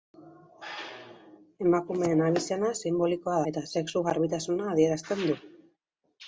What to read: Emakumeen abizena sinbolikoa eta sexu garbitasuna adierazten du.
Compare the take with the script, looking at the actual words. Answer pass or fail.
pass